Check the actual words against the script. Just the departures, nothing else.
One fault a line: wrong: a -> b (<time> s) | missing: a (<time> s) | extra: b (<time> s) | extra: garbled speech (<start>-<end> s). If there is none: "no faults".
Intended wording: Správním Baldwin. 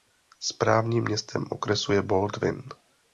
extra: městem okresu je (1.0 s)